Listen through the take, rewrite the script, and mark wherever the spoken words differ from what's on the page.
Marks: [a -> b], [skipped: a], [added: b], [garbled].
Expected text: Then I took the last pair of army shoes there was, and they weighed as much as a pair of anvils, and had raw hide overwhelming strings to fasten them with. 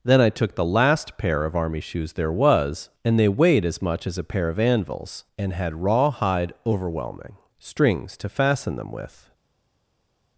Then I took the last pair of army shoes there was, and they weighed as much as a pair of anvils, and had raw hide overwhelming strings to fasten them with.